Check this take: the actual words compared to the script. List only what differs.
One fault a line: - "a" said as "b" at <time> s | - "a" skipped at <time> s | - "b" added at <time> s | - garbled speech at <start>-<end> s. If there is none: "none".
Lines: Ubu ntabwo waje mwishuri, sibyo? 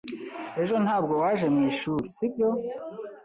- "Ubu" said as "Ejo" at 0.6 s